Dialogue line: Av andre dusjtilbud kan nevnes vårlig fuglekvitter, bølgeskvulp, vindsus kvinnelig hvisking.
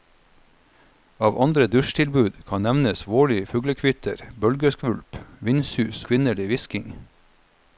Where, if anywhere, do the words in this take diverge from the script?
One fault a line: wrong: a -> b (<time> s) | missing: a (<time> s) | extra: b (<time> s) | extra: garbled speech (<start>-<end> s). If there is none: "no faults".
no faults